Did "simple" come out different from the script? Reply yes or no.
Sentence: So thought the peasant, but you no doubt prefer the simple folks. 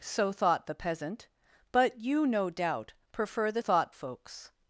yes